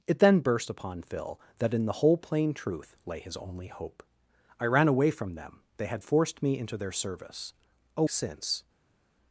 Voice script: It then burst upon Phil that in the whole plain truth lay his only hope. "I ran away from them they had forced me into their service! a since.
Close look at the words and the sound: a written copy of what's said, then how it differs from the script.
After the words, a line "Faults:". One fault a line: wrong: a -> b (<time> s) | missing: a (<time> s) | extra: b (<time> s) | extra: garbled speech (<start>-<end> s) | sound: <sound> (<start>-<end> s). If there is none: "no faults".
It then burst upon Phil that in the whole plain truth lay his only hope. "I ran away from them they had forced me into their service! a since.
Faults:
no faults